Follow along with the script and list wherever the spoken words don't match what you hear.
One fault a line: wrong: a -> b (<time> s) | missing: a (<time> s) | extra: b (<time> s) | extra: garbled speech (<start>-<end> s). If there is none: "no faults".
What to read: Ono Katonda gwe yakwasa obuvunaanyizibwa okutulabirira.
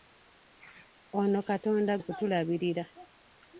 missing: gwe yakwasa obuvunaanyizibwa (1.9 s)